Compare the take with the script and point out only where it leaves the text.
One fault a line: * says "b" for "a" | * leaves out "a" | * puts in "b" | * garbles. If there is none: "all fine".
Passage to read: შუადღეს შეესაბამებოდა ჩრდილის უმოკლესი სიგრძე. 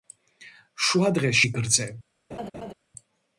* leaves out "შეესაბამებოდა ჩრდილის უმოკლესი"